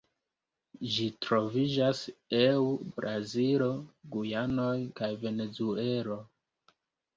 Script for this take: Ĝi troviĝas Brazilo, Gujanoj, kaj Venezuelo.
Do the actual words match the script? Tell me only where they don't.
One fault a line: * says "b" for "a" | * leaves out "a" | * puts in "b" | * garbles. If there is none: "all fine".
* puts in "eu"